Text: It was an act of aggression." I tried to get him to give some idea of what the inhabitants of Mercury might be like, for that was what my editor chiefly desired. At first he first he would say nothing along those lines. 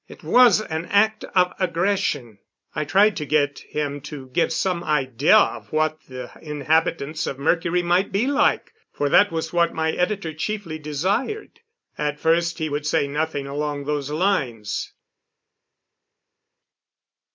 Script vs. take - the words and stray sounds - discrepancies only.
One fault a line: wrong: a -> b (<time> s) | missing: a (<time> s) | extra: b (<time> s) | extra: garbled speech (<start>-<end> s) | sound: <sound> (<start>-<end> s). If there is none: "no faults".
missing: first he (12.7 s)